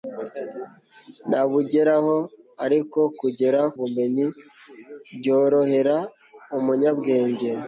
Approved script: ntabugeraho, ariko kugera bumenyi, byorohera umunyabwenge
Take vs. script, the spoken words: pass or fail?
pass